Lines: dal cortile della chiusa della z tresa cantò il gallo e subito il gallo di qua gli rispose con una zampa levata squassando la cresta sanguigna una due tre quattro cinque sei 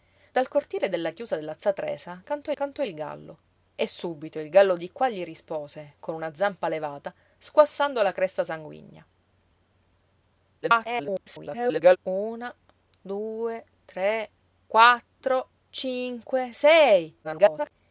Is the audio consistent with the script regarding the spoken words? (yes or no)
no